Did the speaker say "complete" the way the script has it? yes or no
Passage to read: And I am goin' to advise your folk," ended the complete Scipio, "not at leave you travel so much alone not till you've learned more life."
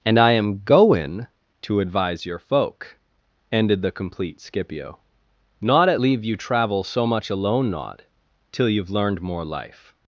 yes